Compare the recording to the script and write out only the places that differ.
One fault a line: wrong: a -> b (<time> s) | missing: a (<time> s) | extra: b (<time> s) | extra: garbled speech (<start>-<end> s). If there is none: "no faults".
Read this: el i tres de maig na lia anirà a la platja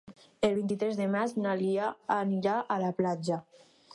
extra: vint (0.6 s)